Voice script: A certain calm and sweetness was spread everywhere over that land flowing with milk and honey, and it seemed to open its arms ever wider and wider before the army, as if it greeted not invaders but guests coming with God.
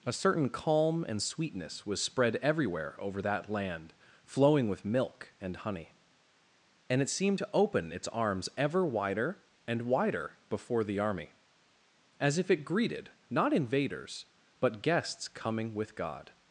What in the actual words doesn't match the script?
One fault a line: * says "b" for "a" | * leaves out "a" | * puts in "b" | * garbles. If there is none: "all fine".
all fine